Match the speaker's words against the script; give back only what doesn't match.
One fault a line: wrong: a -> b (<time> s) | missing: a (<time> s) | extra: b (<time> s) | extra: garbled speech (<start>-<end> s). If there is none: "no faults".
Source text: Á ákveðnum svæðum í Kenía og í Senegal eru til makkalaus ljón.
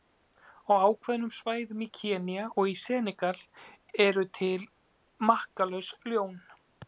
no faults